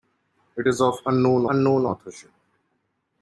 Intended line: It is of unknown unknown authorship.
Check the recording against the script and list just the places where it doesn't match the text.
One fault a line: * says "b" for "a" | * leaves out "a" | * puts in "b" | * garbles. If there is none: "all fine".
all fine